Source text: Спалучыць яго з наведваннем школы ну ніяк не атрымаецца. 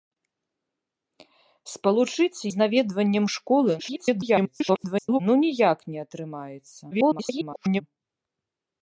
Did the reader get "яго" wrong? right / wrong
wrong